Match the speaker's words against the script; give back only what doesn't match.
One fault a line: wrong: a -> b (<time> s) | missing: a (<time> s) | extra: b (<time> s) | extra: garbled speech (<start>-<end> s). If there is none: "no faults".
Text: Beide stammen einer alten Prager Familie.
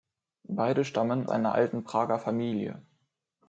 no faults